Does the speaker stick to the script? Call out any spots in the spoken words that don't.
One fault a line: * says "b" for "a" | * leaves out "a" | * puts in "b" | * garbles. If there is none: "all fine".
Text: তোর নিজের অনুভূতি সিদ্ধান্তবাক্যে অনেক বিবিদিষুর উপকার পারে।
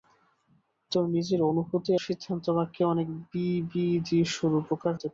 all fine